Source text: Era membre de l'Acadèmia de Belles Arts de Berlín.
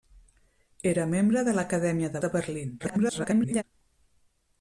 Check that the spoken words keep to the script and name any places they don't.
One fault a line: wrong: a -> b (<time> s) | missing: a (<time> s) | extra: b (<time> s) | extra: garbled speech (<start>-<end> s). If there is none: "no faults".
missing: Belles Arts (2.2 s)
extra: garbled speech (2.8-3.6 s)